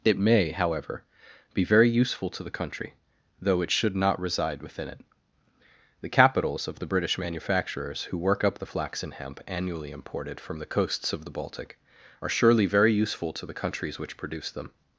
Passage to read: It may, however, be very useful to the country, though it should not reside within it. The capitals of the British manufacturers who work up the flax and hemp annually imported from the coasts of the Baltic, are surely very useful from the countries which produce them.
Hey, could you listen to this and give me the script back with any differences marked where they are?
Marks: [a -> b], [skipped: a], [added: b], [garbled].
It may, however, be very useful to the country, though it should not reside within it. The capitals of the British manufacturers who work up the flax and hemp annually imported from the coasts of the Baltic, are surely very useful [from -> to] the countries which produce them.